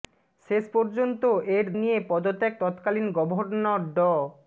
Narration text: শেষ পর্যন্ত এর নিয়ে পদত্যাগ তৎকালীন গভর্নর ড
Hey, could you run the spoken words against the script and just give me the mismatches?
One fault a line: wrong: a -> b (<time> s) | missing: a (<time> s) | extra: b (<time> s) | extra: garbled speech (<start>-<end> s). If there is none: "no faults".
no faults